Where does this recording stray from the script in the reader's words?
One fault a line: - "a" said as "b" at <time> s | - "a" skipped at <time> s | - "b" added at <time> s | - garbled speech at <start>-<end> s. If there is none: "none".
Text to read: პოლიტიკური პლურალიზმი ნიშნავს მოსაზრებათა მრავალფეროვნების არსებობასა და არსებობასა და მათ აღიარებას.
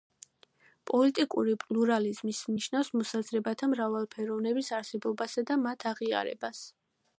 - "არსებობასა და" skipped at 5.6 s